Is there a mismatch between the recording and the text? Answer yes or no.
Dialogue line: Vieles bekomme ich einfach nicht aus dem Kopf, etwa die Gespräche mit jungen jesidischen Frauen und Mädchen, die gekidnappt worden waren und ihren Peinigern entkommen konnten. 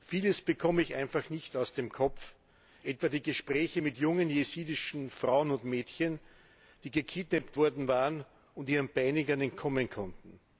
no